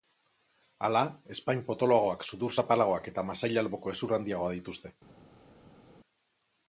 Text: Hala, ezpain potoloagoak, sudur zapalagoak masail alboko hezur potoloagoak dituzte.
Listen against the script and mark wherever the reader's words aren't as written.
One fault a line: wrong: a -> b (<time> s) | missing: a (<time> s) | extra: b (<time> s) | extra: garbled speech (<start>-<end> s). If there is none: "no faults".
extra: eta (3.1 s)
wrong: potoloagoak -> handiagoa (4.2 s)